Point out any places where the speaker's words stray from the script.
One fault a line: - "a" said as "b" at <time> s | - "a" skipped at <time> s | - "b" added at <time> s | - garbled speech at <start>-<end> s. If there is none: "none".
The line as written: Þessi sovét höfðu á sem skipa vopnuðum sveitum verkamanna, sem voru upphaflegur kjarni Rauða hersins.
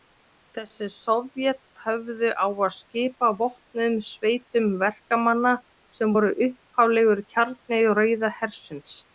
- "sem" said as "að" at 2.5 s